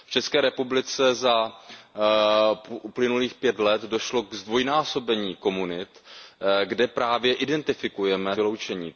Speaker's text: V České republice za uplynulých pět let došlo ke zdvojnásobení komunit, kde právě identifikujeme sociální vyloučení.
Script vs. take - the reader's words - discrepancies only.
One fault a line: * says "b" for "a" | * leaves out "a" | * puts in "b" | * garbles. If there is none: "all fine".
* leaves out "sociální"